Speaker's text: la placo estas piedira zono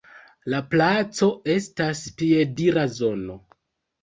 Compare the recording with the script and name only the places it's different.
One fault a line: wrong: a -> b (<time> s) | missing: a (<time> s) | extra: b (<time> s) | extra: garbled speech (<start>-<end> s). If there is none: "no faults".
no faults